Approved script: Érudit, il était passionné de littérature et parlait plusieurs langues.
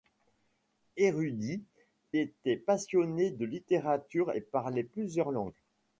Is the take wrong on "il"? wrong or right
wrong